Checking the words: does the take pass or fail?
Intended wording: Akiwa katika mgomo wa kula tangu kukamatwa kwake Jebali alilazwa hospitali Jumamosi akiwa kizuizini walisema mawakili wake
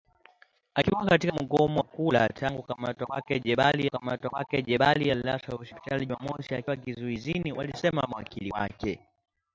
fail